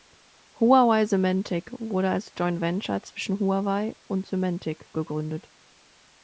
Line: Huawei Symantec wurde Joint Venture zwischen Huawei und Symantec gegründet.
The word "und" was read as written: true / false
true